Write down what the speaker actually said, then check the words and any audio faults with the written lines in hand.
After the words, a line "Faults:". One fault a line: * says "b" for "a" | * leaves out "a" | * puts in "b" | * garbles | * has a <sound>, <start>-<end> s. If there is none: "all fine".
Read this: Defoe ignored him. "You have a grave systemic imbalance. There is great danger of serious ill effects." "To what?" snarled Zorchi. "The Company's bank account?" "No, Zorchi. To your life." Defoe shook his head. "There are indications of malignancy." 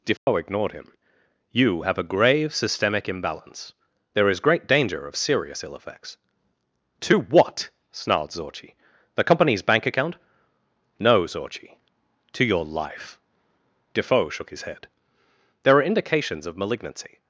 Defoe ignored him. "You have a grave systemic imbalance. There is great danger of serious ill effects." "To what?" snarled Zorchi. "The Company's bank account?" "No, Zorchi. To your life." Defoe shook his head. "There are indications of malignancy."
Faults:
* has a dropout, 0.2-0.3 s